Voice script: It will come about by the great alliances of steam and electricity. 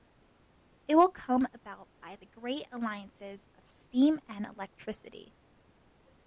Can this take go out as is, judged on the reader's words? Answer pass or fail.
pass